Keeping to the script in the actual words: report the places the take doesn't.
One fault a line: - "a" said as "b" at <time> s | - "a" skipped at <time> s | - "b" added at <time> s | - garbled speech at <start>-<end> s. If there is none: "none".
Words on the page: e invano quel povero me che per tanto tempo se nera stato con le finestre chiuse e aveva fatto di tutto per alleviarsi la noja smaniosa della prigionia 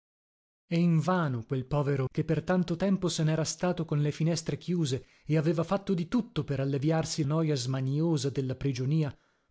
- "me" skipped at 2.1 s
- "la" skipped at 7.2 s